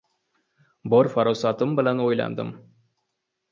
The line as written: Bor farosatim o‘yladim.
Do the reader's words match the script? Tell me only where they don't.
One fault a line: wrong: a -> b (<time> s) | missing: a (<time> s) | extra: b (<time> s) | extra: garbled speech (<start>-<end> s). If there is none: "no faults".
extra: bilan (1.8 s)